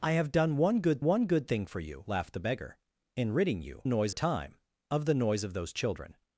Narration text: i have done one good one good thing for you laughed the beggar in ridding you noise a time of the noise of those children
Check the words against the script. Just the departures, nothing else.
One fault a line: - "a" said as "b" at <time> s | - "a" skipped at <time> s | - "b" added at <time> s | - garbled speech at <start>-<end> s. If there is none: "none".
none